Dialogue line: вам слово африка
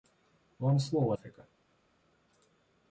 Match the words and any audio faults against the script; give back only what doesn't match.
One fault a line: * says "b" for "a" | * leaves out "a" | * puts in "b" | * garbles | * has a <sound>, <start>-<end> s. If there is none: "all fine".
all fine